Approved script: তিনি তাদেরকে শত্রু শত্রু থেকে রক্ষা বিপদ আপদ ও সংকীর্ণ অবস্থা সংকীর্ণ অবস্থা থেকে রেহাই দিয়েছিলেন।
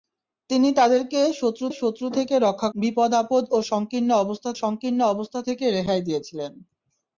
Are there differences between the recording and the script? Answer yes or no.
no